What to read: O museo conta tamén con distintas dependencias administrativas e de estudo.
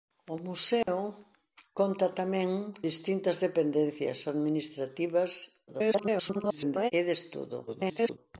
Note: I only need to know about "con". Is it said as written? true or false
false